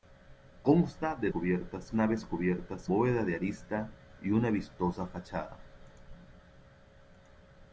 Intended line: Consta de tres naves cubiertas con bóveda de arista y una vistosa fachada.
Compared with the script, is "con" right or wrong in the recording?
wrong